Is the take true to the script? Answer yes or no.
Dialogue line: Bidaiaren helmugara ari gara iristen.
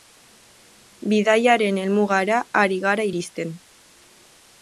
yes